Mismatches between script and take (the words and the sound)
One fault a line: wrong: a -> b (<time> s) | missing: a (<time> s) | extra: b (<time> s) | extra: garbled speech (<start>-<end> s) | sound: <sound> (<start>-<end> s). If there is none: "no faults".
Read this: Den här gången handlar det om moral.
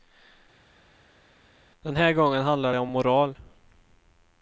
no faults